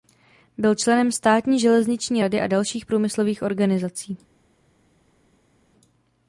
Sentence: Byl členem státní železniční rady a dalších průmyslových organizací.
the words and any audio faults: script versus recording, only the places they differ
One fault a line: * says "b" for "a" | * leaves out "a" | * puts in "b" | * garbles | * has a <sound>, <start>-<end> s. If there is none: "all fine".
all fine